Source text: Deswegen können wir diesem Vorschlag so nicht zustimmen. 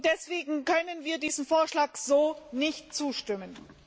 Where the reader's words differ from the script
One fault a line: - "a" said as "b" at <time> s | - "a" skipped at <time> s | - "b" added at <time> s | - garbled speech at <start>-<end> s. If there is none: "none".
none